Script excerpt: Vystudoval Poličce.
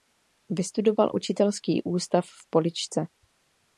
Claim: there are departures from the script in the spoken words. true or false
true